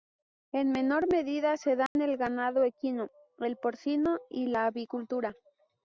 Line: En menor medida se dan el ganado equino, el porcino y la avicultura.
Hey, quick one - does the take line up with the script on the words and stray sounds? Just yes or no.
no